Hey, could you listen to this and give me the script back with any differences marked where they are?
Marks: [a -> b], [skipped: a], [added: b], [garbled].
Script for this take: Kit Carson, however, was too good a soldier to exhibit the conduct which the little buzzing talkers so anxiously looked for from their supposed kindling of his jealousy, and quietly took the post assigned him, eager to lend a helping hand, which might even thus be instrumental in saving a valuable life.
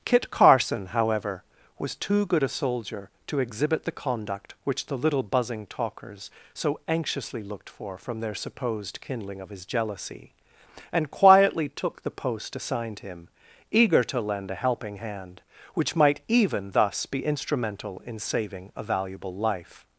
Kit Carson, however, was too good a soldier to exhibit the conduct which the little buzzing talkers so anxiously looked for from their supposed kindling of his jealousy, and quietly took the post assigned him, eager to lend a helping hand, which might even thus be instrumental in saving a valuable life.